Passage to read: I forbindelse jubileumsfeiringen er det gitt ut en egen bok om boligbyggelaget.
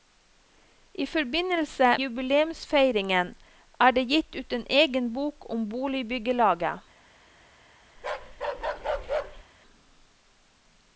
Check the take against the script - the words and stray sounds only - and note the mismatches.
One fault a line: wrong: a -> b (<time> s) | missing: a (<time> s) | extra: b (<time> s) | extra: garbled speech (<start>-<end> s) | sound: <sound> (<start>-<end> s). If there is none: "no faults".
sound: bark (8.0-9.4 s)